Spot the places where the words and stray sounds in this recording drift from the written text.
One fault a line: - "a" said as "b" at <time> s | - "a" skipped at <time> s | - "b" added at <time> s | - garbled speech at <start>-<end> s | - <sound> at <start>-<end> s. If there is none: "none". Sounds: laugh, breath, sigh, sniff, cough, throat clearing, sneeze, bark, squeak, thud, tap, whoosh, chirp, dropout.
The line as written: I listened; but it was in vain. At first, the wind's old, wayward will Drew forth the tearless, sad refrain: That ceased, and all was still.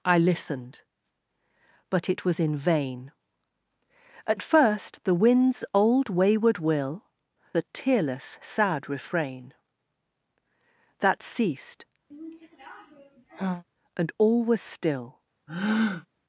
- "Drew forth" skipped at 7.1 s
- sigh at 12.1-13.6 s
- breath at 15.5-16.1 s